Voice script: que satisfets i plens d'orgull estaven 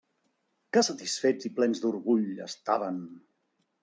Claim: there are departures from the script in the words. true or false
false